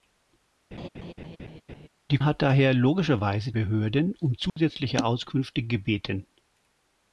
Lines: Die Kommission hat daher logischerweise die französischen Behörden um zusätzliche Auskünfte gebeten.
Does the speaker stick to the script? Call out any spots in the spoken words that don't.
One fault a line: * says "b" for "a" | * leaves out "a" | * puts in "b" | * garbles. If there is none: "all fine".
* leaves out "Kommission"
* leaves out "die französischen"